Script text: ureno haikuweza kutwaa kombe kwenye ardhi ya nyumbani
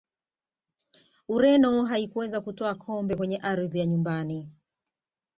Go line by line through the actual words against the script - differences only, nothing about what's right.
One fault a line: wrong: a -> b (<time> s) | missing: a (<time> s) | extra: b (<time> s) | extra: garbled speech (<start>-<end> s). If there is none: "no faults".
no faults